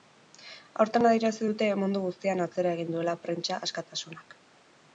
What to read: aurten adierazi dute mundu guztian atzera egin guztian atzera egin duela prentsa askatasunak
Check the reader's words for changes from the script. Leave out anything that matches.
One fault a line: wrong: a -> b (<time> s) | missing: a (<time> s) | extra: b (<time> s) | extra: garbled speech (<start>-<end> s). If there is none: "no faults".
missing: guztian atzera egin (3.0 s)